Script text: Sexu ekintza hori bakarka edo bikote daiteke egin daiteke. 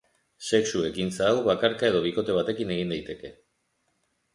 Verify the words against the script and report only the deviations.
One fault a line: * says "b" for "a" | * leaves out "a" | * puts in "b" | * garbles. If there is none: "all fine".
* says "hau" for "hori"
* says "batekin" for "daiteke"